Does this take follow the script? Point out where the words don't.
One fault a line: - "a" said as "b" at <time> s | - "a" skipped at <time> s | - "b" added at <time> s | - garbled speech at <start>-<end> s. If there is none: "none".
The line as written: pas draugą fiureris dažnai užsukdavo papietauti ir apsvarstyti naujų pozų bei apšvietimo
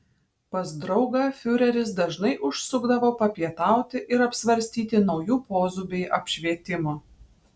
none